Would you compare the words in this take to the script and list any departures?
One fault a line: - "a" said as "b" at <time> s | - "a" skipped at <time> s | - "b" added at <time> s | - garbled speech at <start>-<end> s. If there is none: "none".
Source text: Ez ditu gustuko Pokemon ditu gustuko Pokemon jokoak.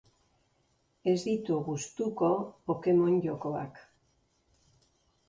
- "ditu gustuko Pokemon" skipped at 3.2 s